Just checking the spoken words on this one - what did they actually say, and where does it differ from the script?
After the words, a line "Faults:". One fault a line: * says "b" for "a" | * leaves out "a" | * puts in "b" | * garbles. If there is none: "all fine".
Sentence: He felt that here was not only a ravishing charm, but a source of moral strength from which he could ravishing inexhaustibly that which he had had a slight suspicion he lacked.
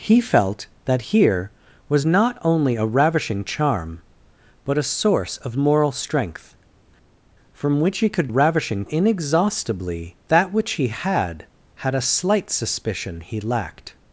He felt that here was not only a ravishing charm, but a source of moral strength from which he could ravishing inexhaustibly that which he had had a slight suspicion he lacked.
Faults:
all fine